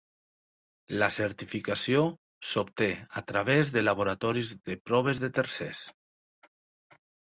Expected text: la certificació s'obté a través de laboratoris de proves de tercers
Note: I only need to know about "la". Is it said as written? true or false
true